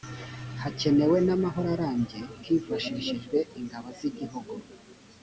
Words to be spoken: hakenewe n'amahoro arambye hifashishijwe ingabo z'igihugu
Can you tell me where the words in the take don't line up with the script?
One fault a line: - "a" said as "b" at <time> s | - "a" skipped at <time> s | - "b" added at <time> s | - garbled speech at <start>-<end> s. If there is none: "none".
none